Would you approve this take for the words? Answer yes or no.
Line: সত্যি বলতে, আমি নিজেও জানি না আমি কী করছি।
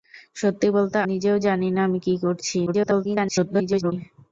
no